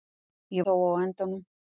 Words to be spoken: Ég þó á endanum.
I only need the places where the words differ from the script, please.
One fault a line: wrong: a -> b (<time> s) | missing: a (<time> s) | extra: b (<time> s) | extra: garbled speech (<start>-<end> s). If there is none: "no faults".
no faults